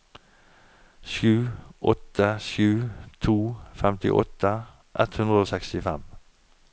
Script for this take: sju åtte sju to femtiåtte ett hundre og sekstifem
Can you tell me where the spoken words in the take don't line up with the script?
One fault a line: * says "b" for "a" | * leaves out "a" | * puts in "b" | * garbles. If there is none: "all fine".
all fine